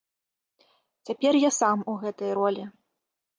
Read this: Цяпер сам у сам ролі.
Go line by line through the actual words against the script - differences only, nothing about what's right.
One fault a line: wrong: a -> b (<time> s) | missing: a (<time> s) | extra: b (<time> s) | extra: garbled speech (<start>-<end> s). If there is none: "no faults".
extra: я (1.4 s)
wrong: сам -> гэтай (2.1 s)